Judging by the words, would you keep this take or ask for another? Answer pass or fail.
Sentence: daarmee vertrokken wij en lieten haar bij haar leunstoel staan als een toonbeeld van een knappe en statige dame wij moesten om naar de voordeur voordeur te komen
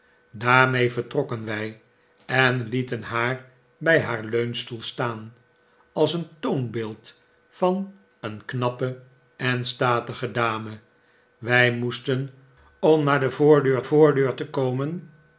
pass